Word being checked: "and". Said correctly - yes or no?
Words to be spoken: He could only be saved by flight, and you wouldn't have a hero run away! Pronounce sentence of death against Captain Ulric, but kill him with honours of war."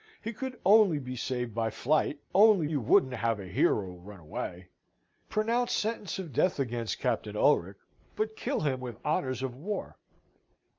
no